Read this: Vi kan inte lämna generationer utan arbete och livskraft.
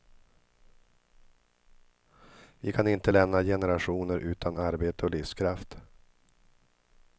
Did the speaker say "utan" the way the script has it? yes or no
yes